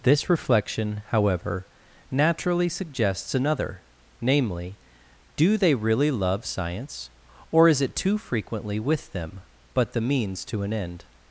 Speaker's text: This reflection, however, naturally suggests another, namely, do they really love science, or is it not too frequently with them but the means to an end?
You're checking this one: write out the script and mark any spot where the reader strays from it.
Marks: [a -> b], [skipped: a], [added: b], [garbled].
This reflection, however, naturally suggests another, namely, do they really love science, or is it [skipped: not] too frequently with them but the means to an end?